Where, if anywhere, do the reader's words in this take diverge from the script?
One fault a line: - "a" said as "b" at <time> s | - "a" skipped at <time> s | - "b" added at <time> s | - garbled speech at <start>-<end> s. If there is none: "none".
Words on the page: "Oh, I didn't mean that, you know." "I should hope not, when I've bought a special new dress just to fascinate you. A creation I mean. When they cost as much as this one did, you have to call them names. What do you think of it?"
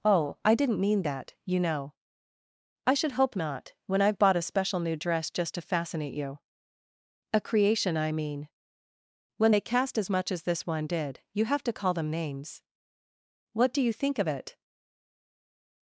- "cost" said as "cast" at 9.6 s